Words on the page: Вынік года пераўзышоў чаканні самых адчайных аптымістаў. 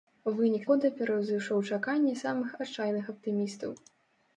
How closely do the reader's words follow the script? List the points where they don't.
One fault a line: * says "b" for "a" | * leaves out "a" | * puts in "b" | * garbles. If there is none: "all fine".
all fine